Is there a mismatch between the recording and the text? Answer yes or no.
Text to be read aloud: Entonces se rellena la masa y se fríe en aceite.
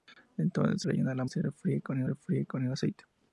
yes